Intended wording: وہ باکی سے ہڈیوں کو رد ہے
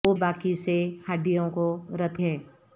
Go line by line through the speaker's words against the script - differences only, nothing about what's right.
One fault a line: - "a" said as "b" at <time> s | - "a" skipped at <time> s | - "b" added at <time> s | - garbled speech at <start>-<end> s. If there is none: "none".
none